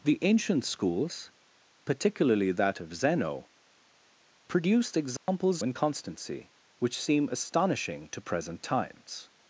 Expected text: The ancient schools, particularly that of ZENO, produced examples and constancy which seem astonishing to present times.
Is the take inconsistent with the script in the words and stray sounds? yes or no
yes